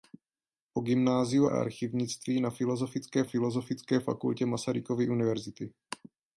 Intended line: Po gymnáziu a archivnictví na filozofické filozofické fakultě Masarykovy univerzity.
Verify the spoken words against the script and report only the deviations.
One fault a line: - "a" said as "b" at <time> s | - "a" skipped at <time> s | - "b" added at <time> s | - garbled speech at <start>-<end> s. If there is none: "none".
none